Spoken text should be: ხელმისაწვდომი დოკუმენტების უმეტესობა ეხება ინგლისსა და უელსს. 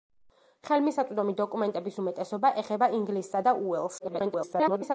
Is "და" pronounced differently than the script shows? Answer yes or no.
no